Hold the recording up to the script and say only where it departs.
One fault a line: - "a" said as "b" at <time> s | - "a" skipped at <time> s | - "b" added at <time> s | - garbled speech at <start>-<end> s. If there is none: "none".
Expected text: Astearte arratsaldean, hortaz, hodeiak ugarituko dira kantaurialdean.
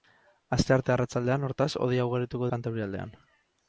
- "dira" skipped at 2.5 s